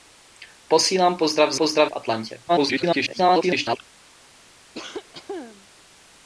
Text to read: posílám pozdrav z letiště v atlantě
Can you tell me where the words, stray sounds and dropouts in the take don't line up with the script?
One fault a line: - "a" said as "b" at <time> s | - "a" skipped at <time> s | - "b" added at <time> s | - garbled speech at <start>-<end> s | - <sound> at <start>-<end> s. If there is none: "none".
- "letiště" said as "pozdrav" at 1.6 s
- garbled speech at 2.5-3.8 s
- cough at 4.7-5.7 s